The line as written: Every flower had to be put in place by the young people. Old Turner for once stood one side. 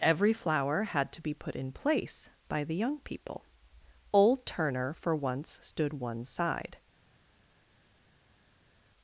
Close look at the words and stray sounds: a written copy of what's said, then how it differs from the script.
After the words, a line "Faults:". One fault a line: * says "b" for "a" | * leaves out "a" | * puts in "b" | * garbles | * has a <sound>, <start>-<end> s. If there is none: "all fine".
Every flower had to be put in place by the young people. Old Turner for once stood one side.
Faults:
all fine